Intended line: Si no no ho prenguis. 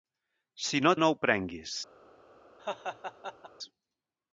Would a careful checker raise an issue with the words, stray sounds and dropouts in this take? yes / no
yes